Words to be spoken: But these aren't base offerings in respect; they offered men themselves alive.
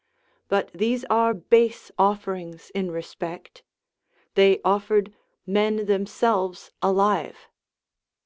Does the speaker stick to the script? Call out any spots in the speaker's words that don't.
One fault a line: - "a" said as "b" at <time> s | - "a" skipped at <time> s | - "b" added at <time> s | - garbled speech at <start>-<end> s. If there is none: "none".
- "aren't" said as "are" at 1.1 s